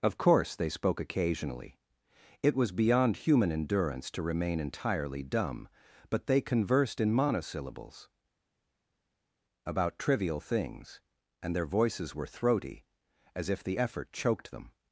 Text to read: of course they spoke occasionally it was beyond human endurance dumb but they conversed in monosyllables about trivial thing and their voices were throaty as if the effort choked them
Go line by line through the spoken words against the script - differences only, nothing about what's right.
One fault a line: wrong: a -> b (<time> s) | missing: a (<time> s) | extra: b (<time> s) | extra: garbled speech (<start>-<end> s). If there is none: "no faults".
extra: to remain entirely (4.1 s)
wrong: thing -> things (10.4 s)